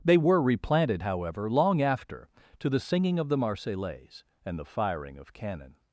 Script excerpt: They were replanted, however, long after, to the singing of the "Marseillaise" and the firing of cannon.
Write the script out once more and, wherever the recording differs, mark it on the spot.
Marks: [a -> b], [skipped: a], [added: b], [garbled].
They were replanted, however, long after, to the singing of the "Marseillaise" and the firing of cannon.